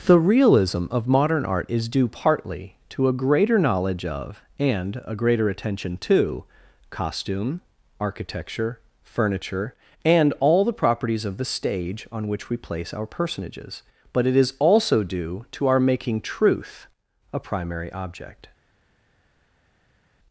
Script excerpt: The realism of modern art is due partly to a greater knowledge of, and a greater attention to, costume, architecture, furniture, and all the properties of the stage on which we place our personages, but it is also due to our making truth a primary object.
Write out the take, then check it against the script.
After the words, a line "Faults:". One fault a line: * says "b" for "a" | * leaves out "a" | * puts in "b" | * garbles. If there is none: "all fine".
The realism of modern art is due partly to a greater knowledge of, and a greater attention to, costume, architecture, furniture, and all the properties of the stage on which we place our personages, but it is also due to our making truth a primary object.
Faults:
all fine